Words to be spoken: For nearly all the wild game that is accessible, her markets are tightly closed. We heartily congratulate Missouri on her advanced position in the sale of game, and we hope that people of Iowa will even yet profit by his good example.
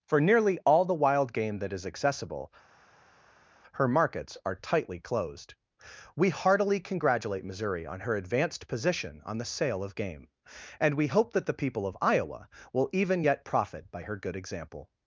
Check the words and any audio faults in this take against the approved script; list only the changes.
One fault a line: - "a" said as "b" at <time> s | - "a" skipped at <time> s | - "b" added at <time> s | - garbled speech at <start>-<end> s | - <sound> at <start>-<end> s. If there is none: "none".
- "in" said as "on" at 9.2 s
- "the" added at 11.5 s
- "his" said as "her" at 14.0 s